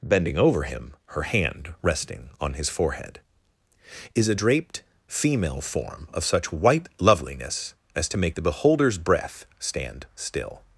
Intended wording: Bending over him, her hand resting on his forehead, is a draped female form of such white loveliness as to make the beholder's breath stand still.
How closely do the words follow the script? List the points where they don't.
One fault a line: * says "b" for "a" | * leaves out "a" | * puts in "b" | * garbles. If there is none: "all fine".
all fine